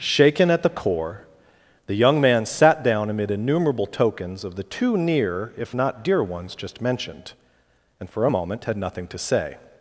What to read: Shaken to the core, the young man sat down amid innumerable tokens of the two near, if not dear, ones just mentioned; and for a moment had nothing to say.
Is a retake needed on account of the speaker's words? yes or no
yes